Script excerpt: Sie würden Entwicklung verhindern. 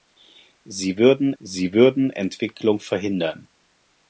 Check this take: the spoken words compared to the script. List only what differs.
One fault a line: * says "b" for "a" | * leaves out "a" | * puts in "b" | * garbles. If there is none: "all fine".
* puts in "sie würden"